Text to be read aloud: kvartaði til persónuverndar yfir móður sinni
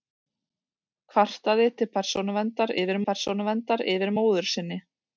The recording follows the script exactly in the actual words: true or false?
false